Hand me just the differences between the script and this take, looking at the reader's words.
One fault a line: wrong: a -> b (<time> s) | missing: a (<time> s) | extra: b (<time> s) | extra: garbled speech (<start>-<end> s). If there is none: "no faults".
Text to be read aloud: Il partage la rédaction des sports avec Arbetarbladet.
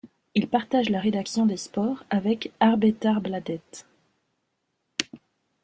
no faults